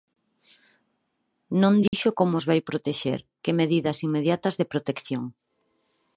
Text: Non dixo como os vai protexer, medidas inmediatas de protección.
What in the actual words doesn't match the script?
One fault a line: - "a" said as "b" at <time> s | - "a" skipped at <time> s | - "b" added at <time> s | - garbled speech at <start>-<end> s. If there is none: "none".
- "que" added at 3.4 s